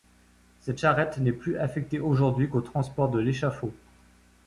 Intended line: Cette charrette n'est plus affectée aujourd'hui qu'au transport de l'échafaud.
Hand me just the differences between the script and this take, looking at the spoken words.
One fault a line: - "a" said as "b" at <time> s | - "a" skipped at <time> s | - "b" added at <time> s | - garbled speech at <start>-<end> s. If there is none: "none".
none